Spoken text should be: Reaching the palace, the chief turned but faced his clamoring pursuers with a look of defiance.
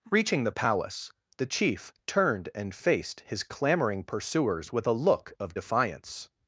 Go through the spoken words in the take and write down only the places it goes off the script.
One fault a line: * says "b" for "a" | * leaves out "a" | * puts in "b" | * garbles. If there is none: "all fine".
* says "and" for "but"